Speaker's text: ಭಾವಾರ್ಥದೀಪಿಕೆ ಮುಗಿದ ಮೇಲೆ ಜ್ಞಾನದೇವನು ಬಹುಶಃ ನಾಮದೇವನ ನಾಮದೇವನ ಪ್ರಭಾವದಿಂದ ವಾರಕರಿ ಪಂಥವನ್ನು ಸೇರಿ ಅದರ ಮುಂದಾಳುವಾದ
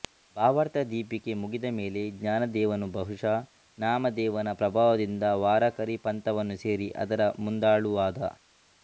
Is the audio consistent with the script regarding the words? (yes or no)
no